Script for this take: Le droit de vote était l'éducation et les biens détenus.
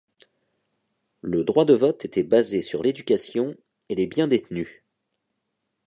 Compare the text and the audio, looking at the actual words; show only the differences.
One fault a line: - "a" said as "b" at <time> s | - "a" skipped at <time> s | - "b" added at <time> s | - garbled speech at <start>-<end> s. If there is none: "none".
- "basé sur" added at 2.2 s